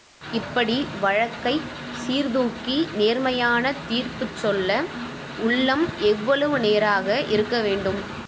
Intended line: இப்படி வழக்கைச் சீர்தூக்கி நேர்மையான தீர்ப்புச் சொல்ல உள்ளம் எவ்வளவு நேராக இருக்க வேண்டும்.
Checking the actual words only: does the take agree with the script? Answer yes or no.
yes